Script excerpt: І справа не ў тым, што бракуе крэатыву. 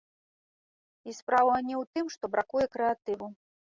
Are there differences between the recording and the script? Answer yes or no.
no